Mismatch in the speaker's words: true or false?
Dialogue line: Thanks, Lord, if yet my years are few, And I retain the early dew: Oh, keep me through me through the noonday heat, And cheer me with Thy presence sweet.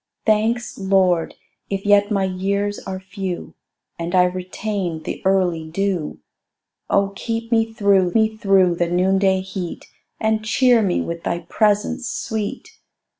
false